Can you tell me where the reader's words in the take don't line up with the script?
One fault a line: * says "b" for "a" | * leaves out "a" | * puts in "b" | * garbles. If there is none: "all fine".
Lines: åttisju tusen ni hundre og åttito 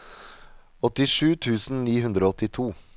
all fine